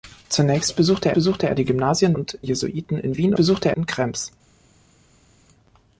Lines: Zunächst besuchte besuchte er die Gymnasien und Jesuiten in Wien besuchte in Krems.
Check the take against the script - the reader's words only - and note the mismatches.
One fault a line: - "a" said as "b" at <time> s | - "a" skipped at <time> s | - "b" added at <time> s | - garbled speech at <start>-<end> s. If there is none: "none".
none